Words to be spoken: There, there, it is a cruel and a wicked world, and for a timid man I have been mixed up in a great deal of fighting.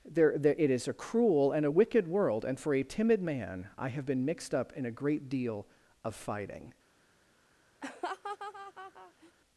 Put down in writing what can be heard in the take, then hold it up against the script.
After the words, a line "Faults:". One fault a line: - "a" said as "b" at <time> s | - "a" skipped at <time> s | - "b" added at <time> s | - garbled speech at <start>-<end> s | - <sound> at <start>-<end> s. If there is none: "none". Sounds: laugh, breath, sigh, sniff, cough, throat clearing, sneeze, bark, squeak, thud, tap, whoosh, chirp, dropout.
There, there, it is a cruel and a wicked world, and for a timid man I have been mixed up in a great deal of fighting.
Faults:
- laugh at 7.8-9.3 s